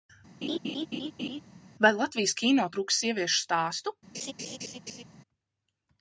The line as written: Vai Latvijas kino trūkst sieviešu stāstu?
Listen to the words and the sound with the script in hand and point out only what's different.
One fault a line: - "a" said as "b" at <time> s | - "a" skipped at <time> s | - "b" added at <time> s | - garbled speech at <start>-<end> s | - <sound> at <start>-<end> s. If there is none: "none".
- laugh at 0.4-1.4 s
- laugh at 4.1-5.0 s